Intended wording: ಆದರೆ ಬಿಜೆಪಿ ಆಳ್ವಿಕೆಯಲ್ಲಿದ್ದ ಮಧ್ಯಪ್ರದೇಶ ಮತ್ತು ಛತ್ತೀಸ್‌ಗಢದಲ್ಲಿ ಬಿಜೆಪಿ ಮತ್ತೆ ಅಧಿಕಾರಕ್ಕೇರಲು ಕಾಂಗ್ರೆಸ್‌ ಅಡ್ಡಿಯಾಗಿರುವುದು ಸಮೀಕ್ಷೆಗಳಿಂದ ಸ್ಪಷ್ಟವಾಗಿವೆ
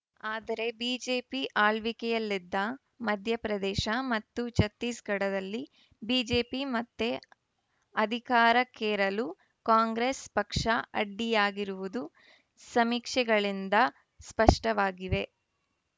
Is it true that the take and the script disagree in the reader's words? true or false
true